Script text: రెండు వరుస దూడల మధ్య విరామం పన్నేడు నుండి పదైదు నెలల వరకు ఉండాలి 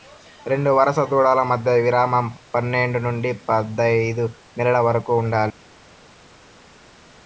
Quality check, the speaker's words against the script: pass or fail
pass